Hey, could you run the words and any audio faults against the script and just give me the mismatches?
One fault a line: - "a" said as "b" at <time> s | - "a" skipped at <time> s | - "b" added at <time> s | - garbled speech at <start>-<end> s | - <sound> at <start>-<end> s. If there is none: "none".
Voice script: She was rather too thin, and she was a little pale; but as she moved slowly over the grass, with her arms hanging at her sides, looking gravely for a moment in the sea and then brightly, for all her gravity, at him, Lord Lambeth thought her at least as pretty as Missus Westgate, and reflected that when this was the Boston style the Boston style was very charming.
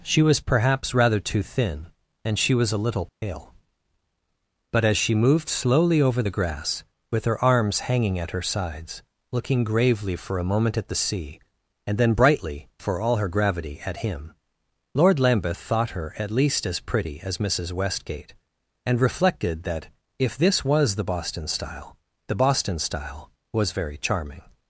- "perhaps" added at 0.4 s
- dropout at 3.1-3.2 s
- "in" said as "at" at 10.8 s
- "when" said as "if" at 20.2 s